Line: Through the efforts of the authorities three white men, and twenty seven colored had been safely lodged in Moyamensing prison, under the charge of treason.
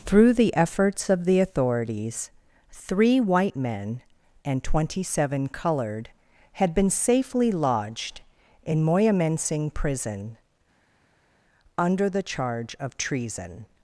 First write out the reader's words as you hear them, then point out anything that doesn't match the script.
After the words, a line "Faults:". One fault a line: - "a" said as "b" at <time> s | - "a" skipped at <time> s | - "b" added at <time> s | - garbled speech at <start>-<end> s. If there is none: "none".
Through the efforts of the authorities three white men, and twenty seven colored had been safely lodged in Moyamensing prison, under the charge of treason.
Faults:
none